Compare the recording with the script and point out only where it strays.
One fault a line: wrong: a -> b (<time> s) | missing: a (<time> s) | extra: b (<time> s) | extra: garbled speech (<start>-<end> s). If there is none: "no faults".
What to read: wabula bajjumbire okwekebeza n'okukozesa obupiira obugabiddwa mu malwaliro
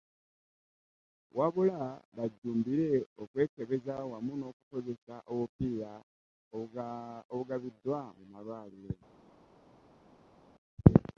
extra: wamu (4.1 s)